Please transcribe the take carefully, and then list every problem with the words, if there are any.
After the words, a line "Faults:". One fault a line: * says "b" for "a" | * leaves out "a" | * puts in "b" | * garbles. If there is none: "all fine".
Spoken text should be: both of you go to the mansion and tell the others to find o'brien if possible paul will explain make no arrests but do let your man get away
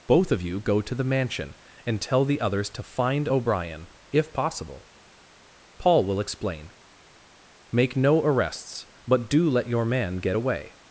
both of you go to the mansion and tell the others to find o'brien if possible paul will explain make no arrests but do let your man get away
Faults:
all fine